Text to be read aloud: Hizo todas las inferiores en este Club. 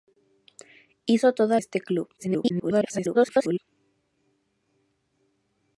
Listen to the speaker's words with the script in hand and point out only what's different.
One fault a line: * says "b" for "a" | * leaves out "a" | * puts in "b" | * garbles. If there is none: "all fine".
* leaves out "las inferiores en"
* garbles